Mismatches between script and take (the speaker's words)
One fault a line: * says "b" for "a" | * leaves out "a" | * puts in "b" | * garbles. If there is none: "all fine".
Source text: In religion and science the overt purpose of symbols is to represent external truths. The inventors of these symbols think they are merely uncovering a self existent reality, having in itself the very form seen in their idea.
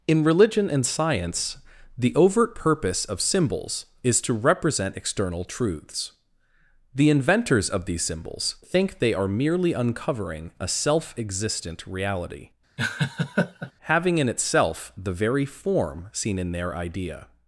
all fine